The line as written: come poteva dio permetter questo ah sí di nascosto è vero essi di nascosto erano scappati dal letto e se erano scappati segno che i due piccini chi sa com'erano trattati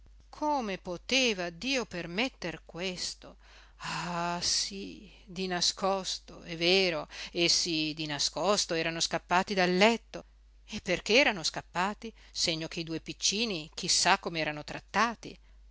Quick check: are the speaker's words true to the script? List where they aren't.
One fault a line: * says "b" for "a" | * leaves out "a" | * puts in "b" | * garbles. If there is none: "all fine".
* says "perché" for "se"